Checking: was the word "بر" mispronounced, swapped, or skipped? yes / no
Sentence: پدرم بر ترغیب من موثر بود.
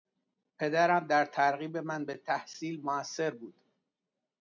yes